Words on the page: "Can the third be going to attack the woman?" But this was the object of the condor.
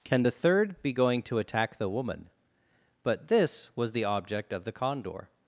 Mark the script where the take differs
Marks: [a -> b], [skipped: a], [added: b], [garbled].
"Can the third be going to attack the woman?" But this was the object of the condor.